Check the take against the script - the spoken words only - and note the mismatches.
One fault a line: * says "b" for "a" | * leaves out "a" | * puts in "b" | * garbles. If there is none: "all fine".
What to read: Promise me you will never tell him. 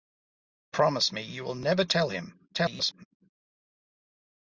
* garbles